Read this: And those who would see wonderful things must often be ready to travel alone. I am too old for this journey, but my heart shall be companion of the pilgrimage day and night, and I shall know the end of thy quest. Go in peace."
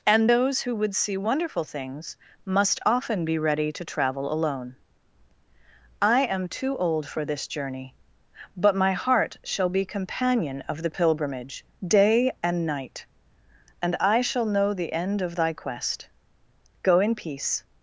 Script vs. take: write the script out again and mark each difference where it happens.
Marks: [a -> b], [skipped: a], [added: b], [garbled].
And those who would see wonderful things must often be ready to travel alone. I am too old for this journey, but my heart shall be companion of the pilgrimage day and night, and I shall know the end of thy quest. Go in peace."